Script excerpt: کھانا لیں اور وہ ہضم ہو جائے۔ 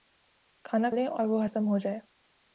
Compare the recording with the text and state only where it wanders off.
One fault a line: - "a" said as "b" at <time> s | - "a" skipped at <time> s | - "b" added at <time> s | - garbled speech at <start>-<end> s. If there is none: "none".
none